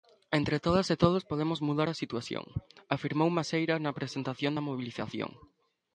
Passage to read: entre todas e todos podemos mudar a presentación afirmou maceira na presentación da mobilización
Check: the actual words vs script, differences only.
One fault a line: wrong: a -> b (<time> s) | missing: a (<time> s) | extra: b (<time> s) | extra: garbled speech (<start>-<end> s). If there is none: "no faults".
wrong: presentación -> situación (2.0 s)